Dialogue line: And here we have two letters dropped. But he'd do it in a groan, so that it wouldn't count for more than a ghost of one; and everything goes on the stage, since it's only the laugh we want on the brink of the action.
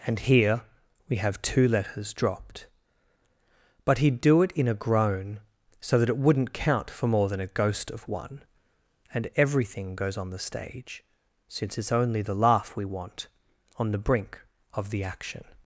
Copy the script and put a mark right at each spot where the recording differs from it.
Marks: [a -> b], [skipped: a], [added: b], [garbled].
And here we have two letters dropped. But he'd do it in a groan, so that it wouldn't count for more than a ghost of one; and everything goes on the stage, since it's only the laugh we want on the brink of the action.